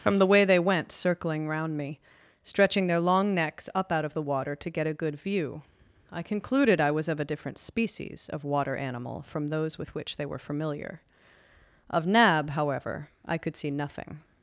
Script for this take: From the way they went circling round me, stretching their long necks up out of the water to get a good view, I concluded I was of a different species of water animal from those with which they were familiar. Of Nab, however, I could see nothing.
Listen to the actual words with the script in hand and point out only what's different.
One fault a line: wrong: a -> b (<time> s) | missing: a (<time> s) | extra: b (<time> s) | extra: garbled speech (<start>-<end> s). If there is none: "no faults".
no faults